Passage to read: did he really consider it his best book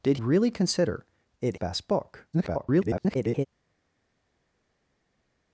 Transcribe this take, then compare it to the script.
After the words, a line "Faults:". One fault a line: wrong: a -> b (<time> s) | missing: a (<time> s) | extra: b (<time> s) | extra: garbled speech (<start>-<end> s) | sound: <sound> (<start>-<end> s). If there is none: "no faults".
did really consider it best book [garbled]
Faults:
missing: he (0.2 s)
missing: his (1.6 s)
extra: garbled speech (2.3-3.5 s)